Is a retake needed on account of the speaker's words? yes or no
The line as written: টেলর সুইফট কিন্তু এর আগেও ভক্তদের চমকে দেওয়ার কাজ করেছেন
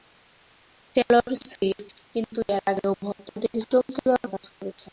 no